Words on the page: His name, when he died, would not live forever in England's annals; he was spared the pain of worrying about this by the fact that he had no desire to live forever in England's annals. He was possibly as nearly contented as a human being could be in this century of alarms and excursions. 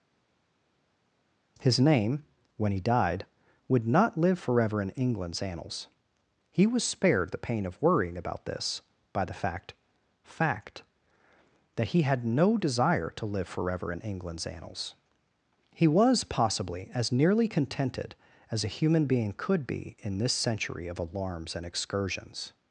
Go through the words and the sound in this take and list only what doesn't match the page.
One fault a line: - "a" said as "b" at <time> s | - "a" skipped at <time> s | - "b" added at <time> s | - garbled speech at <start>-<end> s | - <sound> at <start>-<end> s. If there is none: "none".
- "fact" added at 10.2 s